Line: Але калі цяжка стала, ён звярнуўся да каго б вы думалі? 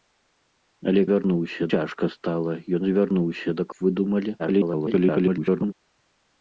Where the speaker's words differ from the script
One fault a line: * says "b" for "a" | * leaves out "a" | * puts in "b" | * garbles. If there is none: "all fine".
* says "звярнуўся" for "калі"
* leaves out "каго"
* garbles